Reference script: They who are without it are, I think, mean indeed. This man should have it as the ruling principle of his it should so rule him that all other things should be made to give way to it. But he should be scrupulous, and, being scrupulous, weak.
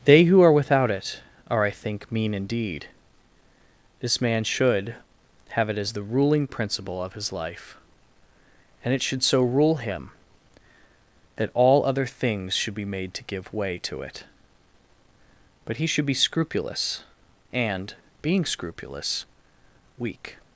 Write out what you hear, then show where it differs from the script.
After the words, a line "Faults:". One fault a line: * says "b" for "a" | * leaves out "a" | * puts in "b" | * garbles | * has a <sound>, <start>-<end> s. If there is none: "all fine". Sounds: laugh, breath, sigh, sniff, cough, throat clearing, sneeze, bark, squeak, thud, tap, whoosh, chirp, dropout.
They who are without it are, I think, mean indeed. This man should have it as the ruling principle of his life; and it should so rule him that all other things should be made to give way to it. But he should be scrupulous, and, being scrupulous, weak.
Faults:
* puts in "life and"